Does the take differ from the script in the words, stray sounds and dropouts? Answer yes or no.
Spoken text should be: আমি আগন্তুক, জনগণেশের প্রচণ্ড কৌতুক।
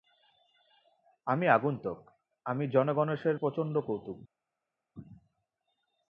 yes